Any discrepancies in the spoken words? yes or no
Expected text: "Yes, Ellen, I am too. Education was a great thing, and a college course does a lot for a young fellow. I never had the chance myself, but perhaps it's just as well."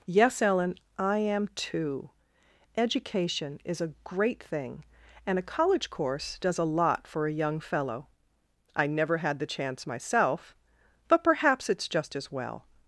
yes